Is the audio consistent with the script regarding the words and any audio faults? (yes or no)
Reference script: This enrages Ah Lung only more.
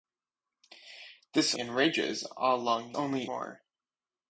yes